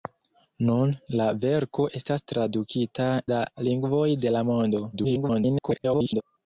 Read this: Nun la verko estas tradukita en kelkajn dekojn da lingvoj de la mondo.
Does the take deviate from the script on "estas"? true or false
false